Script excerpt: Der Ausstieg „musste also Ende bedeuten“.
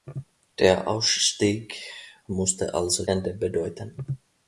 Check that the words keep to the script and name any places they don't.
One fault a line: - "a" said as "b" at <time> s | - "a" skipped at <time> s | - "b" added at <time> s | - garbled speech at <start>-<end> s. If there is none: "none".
none